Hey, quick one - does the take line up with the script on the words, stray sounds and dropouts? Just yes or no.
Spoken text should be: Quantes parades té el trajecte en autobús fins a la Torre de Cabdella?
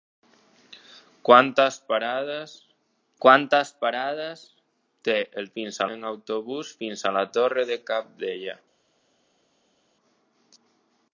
no